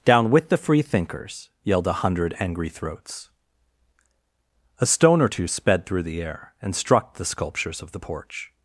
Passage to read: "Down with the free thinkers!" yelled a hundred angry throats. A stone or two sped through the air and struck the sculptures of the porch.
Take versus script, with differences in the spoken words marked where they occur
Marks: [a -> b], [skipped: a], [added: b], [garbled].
"Down with the free thinkers!" yelled a hundred angry throats. A stone or two sped through the air and struck the sculptures of the porch.